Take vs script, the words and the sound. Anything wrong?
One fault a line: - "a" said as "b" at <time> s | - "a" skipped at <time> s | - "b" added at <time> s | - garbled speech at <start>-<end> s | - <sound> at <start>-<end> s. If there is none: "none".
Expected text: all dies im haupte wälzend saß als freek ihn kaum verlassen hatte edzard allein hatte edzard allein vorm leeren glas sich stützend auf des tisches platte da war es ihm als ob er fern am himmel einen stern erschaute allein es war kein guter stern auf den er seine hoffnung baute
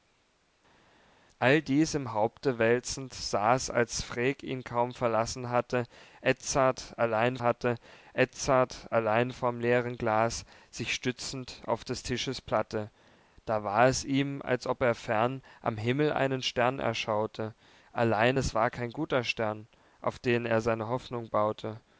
none